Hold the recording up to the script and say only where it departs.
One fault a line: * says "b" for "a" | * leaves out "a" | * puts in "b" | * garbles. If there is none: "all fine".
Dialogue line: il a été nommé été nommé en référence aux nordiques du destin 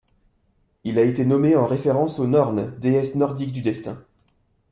* leaves out "été nommé"
* puts in "nornes déesses"